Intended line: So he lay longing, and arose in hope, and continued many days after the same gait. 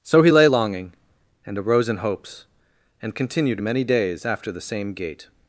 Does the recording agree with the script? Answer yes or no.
no